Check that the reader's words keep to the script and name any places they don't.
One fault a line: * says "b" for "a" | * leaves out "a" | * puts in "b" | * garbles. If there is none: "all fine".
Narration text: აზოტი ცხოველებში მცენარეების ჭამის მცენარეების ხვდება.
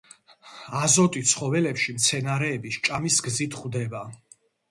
* says "გზით" for "მცენარეების"